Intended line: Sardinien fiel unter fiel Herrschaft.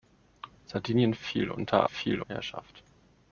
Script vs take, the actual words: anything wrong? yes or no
no